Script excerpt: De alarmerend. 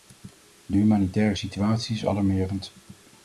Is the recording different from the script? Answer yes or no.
yes